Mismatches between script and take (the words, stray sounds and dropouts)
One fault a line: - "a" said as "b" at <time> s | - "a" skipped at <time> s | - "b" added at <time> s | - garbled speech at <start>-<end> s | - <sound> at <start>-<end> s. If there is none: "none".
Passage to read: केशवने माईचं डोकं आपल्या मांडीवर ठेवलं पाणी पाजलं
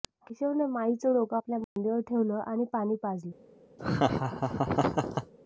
- dropout at 1.6-1.8 s
- "आणि" added at 2.4 s
- laugh at 3.8-5.3 s